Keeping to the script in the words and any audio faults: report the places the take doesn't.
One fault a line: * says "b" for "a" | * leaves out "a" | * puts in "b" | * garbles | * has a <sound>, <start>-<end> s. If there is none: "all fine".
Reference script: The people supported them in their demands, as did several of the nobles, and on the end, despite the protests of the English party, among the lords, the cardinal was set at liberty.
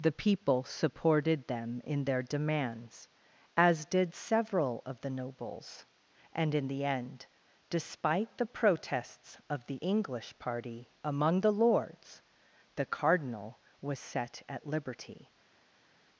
* says "in" for "on"